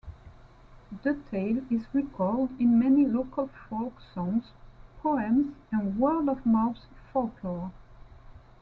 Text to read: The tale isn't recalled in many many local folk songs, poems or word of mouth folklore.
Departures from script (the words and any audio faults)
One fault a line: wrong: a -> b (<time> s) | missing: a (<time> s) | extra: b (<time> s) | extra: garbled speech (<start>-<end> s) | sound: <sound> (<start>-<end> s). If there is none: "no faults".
wrong: isn't -> is (1.7 s)
missing: many (3.0 s)
wrong: or -> and (5.7 s)